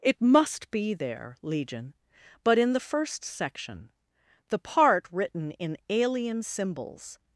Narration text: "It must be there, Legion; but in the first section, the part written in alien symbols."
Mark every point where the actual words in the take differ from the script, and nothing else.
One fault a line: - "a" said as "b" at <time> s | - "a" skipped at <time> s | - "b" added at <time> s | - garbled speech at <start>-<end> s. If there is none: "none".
none